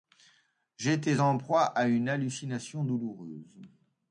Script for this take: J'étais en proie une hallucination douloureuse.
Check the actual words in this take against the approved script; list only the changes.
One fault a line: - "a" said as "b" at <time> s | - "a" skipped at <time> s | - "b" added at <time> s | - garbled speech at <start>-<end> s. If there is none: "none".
- "à" added at 1.6 s